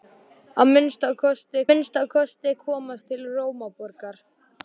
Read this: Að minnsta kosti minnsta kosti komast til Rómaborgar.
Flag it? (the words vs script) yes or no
no